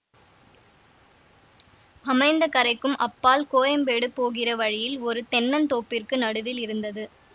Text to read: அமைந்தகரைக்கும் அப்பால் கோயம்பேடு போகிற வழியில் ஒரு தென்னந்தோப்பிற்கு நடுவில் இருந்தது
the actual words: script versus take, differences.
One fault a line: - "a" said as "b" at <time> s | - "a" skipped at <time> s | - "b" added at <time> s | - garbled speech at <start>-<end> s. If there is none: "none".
none